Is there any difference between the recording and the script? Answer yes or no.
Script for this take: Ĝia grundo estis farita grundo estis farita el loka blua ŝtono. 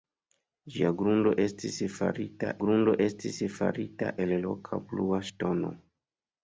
no